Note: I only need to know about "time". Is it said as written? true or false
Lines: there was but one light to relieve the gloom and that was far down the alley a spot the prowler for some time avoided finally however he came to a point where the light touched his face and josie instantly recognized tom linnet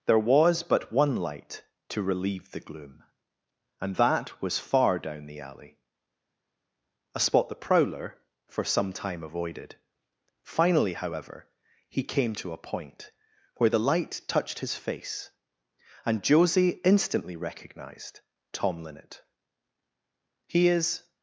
true